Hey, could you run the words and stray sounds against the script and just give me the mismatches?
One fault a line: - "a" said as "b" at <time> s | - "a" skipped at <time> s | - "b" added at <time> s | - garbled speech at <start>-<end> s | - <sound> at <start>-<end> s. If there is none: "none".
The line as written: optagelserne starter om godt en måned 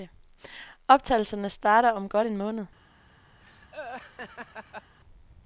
- laugh at 3.4-4.9 s